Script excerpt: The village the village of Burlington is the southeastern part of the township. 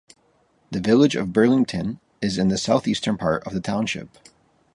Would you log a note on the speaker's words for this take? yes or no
yes